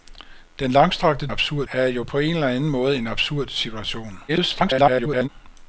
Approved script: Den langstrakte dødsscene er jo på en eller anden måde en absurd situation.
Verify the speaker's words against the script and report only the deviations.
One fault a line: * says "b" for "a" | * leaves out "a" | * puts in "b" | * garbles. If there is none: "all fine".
* says "absurd" for "dødsscene"
* garbles